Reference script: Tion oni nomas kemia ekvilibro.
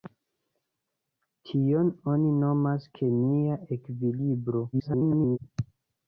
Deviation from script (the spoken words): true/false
true